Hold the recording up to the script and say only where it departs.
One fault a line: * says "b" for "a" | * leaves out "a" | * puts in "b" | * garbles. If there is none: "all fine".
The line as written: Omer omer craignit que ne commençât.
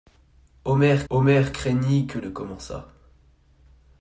all fine